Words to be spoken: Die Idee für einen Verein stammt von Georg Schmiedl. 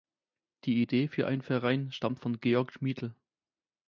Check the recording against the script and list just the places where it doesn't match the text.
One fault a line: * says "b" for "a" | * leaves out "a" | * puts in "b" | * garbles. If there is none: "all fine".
all fine